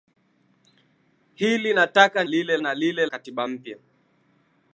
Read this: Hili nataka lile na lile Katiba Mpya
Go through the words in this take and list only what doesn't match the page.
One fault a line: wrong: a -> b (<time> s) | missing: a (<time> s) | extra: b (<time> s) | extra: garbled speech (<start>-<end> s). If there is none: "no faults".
no faults